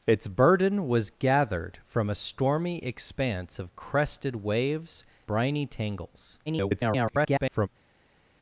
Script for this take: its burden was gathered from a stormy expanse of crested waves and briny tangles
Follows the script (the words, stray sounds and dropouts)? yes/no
no